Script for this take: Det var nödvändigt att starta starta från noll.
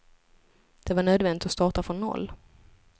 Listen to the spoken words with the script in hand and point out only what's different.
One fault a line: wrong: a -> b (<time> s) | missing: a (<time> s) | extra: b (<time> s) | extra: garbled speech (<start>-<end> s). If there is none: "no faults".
missing: starta (1.8 s)